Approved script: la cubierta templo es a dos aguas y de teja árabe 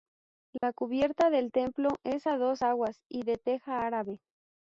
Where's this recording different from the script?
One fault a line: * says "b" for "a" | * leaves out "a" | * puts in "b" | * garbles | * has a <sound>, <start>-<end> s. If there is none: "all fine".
* has a dropout, 0.6-0.6 s
* puts in "del"